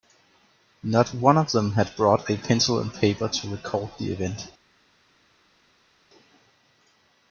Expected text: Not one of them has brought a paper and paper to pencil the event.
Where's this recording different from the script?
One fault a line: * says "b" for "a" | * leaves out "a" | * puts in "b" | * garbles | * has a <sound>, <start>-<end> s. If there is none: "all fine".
* says "had" for "has"
* says "pencil" for "paper"
* says "record" for "pencil"